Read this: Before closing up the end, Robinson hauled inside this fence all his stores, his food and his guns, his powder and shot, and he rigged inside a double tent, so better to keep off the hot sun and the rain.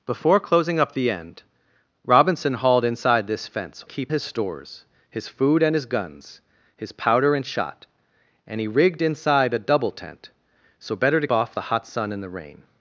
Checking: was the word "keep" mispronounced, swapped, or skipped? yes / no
yes